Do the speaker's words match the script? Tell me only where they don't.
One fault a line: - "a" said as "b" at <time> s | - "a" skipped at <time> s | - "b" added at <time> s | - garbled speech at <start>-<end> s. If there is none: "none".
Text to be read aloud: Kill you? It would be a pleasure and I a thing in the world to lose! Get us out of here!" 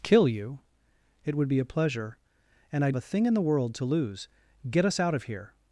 none